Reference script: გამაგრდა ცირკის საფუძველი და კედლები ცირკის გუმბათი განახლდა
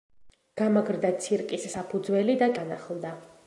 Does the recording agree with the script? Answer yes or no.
no